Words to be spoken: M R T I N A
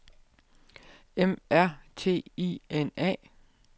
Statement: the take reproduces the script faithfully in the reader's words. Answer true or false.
true